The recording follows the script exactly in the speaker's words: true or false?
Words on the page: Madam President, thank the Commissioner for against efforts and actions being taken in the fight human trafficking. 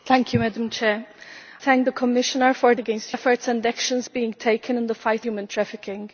true